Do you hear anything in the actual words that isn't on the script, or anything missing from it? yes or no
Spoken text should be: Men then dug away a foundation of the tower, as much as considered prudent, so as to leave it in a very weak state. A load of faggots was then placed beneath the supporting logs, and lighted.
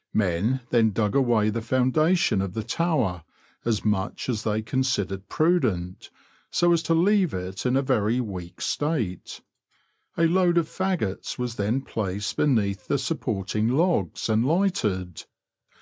yes